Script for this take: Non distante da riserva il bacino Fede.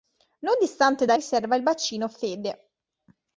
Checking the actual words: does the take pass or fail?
pass